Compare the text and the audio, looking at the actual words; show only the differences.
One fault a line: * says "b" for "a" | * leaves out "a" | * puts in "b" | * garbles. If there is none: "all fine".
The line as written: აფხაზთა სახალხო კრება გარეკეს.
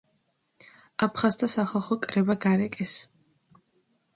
all fine